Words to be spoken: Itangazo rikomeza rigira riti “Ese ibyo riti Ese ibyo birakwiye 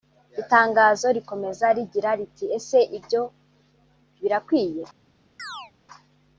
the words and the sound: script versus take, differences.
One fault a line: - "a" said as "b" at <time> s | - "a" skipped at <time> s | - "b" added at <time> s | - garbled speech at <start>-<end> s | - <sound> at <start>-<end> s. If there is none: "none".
- "riti Ese ibyo" skipped at 3.2 s
- chirp at 5.4-5.7 s